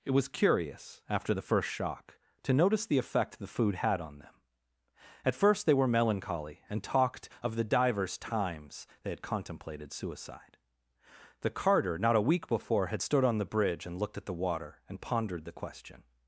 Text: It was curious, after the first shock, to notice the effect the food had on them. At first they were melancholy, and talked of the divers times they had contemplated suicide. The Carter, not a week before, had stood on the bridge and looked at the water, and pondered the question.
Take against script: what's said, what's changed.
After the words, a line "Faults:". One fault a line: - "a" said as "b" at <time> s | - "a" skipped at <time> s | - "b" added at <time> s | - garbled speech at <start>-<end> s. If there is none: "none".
It was curious, after the first shock, to notice the effect the food had on them. At first they were melancholy, and talked of the divers times they had contemplated suicide. The Carter, not a week before, had stood on the bridge and looked at the water, and pondered the question.
Faults:
none